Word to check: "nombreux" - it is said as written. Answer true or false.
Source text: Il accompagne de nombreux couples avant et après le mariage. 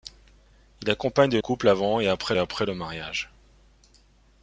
false